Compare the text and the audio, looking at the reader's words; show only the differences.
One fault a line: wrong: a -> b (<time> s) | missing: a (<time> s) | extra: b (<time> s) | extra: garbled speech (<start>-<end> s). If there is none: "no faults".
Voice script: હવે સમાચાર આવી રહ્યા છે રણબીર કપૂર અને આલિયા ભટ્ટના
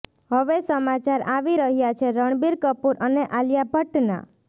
no faults